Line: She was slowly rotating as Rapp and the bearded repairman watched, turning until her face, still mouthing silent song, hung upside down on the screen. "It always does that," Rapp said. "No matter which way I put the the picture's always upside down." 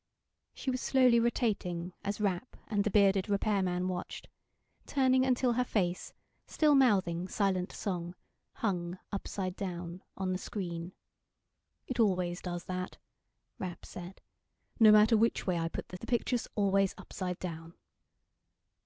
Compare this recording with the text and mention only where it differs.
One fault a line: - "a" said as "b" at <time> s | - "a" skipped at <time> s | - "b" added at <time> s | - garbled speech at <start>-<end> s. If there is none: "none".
none